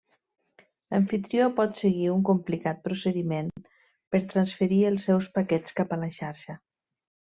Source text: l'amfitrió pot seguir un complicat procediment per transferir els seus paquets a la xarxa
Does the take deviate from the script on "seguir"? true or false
false